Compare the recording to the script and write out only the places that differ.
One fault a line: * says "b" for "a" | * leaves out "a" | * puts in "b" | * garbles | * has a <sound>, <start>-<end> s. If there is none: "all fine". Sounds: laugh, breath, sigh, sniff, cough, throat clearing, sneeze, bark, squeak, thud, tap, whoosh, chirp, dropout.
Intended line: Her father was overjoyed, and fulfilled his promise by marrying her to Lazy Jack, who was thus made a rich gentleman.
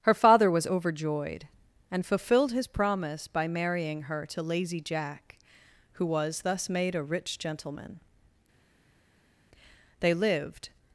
* puts in "They lived"